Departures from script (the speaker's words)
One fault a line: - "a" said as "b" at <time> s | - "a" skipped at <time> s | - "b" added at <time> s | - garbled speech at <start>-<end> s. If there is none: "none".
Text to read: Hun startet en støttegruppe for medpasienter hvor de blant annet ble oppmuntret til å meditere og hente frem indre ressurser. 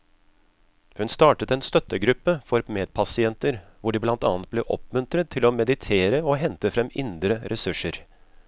none